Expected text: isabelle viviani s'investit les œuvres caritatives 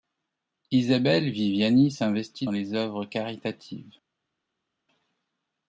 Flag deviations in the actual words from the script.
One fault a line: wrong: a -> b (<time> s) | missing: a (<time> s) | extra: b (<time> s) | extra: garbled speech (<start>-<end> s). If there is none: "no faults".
no faults